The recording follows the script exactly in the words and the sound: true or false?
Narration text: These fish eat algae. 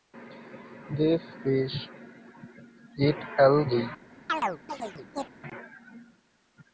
false